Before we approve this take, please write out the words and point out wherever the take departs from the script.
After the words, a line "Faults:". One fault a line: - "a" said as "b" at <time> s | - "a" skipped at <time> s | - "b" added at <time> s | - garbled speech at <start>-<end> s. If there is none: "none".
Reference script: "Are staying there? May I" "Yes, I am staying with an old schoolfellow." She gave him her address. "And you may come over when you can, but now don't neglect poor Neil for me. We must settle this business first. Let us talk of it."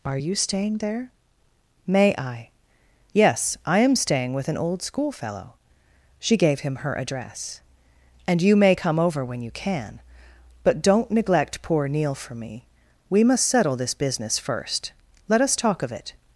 "Are you staying there? May I" "Yes, I am staying with an old schoolfellow." She gave him her address. "And you may come over when you can, but don't neglect poor Neil for me. We must settle this business first. Let us talk of it."
Faults:
- "you" added at 0.2 s
- "now" skipped at 10.8 s